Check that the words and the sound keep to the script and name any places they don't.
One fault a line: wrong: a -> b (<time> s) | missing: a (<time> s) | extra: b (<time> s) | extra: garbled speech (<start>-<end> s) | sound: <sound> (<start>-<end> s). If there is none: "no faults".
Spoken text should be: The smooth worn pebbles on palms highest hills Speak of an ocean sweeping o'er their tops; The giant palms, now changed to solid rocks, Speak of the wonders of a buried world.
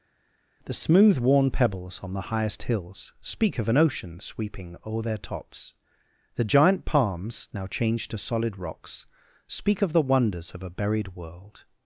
wrong: palms -> the (2.1 s)